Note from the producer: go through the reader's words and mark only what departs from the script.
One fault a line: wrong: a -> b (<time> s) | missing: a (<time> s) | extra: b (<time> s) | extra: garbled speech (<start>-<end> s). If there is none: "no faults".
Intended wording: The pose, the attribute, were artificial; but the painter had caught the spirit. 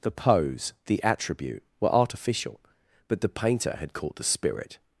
no faults